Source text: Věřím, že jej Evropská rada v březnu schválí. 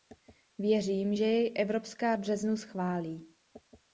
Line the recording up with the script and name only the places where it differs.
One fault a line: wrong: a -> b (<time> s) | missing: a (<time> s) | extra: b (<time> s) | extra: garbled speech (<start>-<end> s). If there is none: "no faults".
missing: rada (2.1 s)